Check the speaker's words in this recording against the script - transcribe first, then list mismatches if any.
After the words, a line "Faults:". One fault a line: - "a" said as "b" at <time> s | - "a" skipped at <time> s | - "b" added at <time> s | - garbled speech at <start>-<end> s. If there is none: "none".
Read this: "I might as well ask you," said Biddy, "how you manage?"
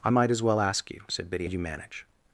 "I might as well ask you," said Biddy, "you manage?"
Faults:
- "how" skipped at 1.5 s